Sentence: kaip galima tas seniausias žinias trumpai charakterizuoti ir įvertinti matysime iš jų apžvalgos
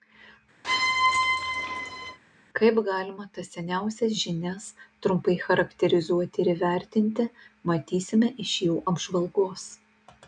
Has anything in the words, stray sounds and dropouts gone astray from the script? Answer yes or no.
yes